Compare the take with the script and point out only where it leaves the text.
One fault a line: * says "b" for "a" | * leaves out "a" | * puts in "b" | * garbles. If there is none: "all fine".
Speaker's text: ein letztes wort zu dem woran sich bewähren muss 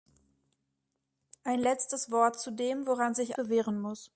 all fine